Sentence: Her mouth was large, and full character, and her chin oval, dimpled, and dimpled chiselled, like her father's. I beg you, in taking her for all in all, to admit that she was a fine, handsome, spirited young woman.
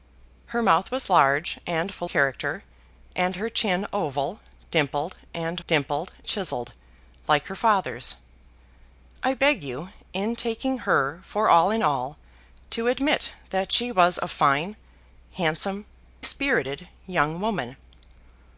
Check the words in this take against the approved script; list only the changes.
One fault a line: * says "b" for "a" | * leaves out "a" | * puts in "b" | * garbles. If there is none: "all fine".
all fine